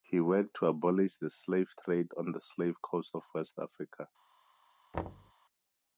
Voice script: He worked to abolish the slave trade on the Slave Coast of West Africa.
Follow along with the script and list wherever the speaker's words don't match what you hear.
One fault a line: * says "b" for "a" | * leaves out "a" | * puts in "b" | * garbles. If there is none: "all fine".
all fine